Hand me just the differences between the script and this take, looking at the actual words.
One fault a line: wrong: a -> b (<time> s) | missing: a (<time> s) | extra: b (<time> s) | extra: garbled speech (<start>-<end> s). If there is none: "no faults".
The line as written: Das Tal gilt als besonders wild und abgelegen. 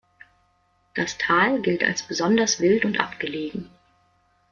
no faults